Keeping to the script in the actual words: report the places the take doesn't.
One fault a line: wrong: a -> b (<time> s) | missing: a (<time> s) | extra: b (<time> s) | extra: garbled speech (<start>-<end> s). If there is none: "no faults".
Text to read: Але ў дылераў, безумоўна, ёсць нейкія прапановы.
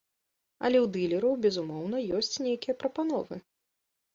no faults